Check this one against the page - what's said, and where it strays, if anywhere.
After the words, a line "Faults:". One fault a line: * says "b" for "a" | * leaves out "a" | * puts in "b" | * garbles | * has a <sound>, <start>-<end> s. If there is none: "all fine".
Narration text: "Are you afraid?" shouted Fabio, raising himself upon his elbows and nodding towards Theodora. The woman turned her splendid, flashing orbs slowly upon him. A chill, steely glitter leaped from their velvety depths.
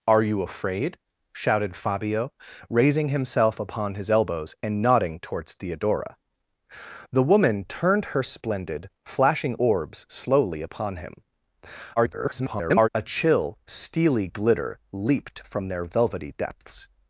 "Are you afraid?" shouted Fabio, raising himself upon his elbows and nodding towards Theodora. The woman turned her splendid, flashing orbs slowly upon him. [garbled] A chill, steely glitter leaped from their velvety depths.
Faults:
* garbles